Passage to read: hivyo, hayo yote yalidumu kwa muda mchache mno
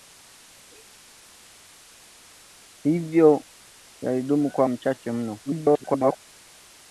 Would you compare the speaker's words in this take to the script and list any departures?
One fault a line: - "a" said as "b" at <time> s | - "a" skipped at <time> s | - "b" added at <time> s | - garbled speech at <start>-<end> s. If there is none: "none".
- "hayo yote" skipped at 3.5 s
- "muda" skipped at 4.7 s
- garbled speech at 5.5-6.2 s